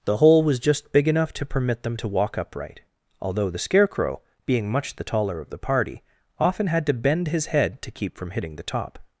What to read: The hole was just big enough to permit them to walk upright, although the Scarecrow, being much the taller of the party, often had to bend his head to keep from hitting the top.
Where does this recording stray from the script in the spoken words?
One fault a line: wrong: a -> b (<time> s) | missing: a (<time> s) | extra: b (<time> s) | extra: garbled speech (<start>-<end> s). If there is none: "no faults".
no faults